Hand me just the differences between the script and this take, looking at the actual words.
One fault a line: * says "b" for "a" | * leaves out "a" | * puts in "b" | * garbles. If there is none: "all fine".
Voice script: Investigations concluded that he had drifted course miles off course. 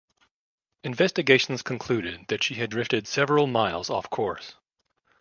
* says "she" for "he"
* says "several" for "course"